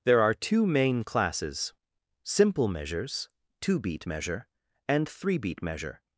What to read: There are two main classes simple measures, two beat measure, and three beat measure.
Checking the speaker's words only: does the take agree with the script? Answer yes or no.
yes